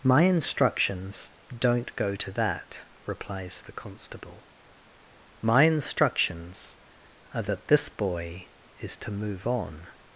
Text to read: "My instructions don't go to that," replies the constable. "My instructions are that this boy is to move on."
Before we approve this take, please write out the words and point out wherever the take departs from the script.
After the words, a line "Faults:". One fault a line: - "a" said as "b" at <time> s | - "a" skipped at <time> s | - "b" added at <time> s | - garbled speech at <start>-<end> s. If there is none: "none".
"My instructions don't go to that," replies the constable. "My instructions are that this boy is to move on."
Faults:
none